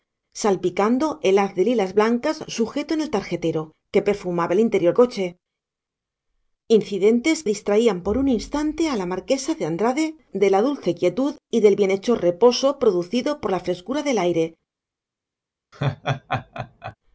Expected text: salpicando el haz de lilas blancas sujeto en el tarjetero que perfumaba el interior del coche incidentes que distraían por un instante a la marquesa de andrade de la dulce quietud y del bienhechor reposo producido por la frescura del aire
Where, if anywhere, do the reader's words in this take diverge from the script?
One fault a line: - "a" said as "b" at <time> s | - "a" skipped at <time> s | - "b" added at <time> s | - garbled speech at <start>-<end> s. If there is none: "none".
- "del" skipped at 5.0 s
- "que" skipped at 7.4 s